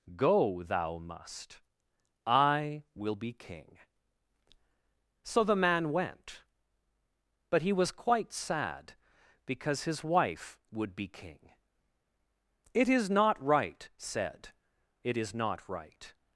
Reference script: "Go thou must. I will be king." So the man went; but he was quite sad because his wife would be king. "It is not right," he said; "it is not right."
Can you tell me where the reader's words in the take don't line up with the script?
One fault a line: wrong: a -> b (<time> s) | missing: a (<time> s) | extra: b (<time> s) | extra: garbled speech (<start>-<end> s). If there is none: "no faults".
missing: he (13.9 s)